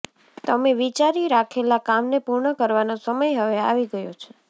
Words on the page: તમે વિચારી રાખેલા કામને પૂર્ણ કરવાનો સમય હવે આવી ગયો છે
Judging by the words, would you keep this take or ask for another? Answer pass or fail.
pass